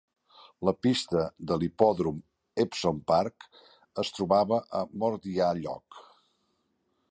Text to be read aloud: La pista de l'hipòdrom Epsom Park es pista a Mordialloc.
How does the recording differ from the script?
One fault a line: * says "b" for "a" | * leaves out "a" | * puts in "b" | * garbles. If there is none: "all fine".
* says "trobava" for "pista"